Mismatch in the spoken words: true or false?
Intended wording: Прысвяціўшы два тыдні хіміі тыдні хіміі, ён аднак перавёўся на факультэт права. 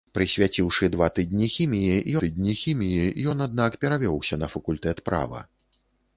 false